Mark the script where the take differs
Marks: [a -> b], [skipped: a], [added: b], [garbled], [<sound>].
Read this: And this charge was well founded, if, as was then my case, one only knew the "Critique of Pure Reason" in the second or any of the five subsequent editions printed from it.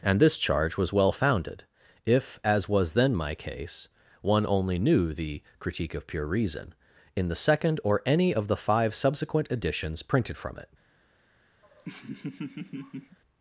And this charge was well founded, if, as was then my case, one only knew the "Critique of Pure Reason" in the second or any of the five subsequent editions printed from it. [laugh]